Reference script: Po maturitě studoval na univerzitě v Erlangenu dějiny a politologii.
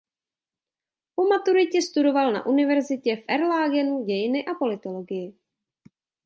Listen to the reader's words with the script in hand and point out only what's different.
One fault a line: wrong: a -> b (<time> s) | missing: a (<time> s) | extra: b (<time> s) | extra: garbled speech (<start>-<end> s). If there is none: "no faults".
no faults